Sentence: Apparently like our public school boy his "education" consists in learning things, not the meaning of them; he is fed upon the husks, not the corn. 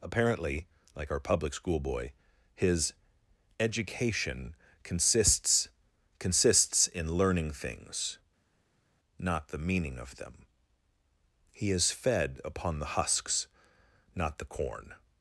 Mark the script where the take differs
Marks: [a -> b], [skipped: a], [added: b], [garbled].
Apparently like our public school boy his "education" consists [added: consists] in learning things, not the meaning of them; he is fed upon the husks, not the corn.